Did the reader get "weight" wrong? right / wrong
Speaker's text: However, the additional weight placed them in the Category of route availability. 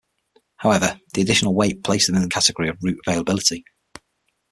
right